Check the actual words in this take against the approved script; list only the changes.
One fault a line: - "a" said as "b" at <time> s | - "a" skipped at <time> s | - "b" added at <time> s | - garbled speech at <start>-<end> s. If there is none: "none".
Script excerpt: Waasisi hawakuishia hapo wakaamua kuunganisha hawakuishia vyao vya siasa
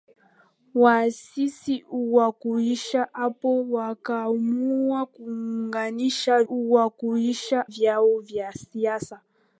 none